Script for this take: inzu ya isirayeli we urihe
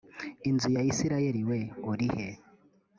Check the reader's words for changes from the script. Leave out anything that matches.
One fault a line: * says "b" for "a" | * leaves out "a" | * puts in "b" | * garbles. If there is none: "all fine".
all fine